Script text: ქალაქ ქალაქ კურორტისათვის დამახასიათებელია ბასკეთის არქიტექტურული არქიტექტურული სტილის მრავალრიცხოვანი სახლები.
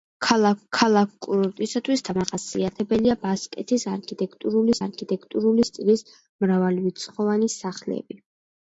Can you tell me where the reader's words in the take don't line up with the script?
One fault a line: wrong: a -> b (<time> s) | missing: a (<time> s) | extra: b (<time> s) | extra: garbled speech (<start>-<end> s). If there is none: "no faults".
no faults